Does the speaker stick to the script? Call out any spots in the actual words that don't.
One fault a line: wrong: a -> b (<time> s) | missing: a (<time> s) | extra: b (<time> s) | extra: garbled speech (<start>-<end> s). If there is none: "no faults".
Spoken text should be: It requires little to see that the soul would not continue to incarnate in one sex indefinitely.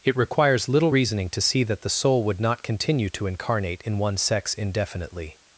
extra: reasoning (0.9 s)